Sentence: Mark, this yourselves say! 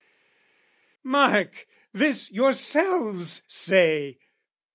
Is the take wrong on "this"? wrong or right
right